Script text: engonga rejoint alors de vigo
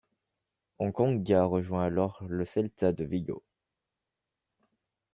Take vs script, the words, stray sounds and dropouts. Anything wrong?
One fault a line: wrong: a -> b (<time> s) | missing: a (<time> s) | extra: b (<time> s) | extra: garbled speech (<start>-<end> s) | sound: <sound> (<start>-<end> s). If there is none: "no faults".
extra: le celta (2.2 s)